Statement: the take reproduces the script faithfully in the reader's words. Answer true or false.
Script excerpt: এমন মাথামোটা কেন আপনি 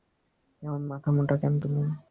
false